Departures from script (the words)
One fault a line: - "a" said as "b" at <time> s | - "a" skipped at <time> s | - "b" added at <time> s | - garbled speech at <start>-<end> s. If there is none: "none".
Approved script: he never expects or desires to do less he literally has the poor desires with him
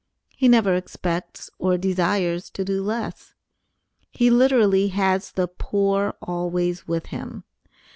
- "desires" said as "always" at 6.2 s